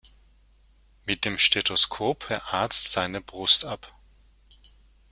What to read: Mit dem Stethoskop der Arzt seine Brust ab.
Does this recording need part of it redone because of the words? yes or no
no